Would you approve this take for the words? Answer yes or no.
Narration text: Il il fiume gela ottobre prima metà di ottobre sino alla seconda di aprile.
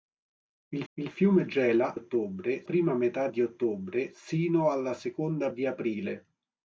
yes